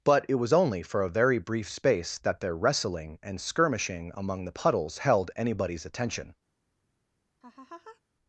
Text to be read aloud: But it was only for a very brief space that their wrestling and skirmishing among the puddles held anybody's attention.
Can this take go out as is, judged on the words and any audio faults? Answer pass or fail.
fail